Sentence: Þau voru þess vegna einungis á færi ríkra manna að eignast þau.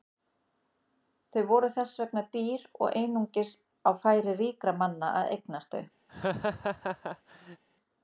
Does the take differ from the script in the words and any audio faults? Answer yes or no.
yes